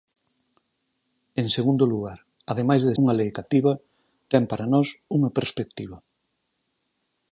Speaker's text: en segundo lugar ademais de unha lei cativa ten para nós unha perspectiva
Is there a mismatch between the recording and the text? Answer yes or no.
no